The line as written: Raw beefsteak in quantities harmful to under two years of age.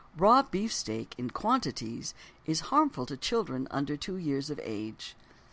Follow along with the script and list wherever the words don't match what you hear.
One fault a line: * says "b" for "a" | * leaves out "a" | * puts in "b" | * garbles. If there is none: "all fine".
* puts in "is"
* puts in "children"